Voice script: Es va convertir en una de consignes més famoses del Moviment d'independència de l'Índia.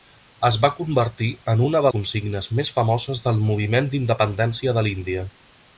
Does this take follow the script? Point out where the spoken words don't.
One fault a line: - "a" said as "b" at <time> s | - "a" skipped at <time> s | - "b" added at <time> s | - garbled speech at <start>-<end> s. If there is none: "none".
none